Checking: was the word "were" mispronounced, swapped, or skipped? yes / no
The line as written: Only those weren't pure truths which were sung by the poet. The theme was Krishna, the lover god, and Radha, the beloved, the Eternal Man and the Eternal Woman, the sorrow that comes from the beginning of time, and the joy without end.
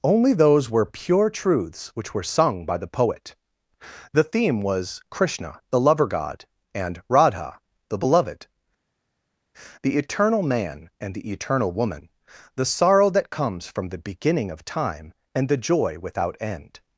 no